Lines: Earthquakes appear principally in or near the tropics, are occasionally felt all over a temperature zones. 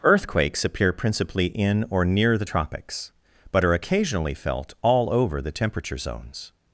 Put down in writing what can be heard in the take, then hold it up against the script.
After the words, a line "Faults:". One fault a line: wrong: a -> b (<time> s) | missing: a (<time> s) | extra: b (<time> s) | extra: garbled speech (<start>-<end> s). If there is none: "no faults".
Earthquakes appear principally in or near the tropics, but are occasionally felt all over the temperature zones.
Faults:
extra: but (3.5 s)
wrong: a -> the (5.4 s)